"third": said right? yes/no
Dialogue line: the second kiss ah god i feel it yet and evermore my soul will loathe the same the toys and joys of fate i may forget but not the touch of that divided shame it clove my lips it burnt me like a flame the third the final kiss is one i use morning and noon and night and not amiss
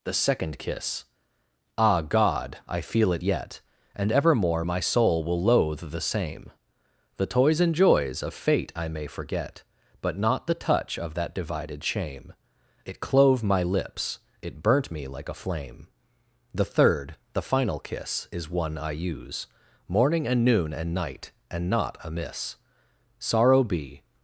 yes